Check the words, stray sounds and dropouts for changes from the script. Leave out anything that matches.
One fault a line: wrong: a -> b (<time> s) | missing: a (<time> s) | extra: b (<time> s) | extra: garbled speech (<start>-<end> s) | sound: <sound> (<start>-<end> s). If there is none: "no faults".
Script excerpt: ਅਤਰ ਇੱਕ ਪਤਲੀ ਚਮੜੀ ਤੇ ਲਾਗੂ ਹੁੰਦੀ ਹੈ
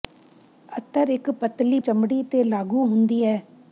no faults